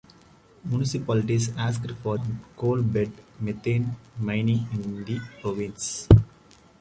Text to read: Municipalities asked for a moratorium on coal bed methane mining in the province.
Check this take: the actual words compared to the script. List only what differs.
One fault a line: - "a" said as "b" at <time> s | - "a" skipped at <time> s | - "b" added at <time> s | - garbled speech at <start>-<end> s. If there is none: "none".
- "a moratorium" skipped at 2.1 s